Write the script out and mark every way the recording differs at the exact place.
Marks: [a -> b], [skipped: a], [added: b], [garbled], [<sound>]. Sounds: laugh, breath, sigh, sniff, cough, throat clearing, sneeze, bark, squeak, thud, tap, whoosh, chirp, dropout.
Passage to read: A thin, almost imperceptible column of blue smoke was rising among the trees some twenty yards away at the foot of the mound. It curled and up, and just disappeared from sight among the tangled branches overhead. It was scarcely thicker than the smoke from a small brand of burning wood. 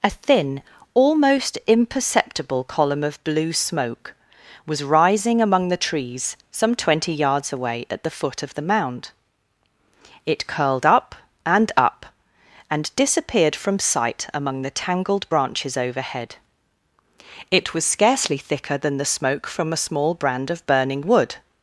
A thin, almost imperceptible column of blue smoke was rising among the trees some twenty yards away at the foot of the mound. It curled [added: up] and up, and [skipped: just] disappeared from sight among the tangled branches overhead. It was scarcely thicker than the smoke from a small brand of burning wood.